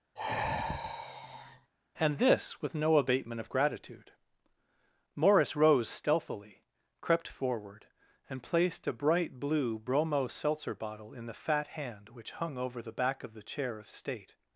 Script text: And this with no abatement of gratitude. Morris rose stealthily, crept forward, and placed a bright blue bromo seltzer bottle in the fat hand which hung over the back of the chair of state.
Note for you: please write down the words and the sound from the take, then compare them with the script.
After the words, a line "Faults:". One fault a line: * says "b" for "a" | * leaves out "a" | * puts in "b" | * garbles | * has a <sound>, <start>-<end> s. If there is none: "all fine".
And this with no abatement of gratitude. Morris rose stealthily, crept forward, and placed a bright blue bromo seltzer bottle in the fat hand which hung over the back of the chair of state.
Faults:
* has a sigh, 0.2-1.7 s